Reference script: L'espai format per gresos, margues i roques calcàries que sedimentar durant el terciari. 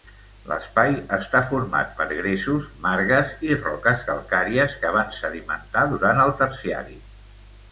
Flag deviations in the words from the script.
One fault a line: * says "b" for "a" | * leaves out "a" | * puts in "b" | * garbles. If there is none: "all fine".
* puts in "està"
* puts in "van"